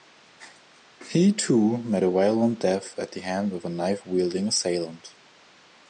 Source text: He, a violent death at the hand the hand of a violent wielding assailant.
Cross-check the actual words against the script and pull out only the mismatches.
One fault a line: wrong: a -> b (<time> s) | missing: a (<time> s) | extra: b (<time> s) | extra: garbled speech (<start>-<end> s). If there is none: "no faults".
extra: too met (1.3 s)
missing: the hand (3.5 s)
wrong: violent -> knife (3.7 s)